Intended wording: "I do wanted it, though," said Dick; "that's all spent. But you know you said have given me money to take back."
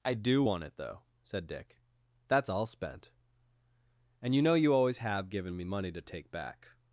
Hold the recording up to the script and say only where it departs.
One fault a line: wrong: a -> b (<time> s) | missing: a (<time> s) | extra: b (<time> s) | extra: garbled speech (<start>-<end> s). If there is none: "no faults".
wrong: wanted -> want (0.4 s)
wrong: But -> And (4.2 s)
wrong: said -> always (4.7 s)